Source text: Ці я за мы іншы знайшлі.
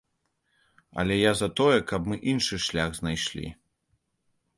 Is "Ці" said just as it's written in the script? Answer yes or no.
no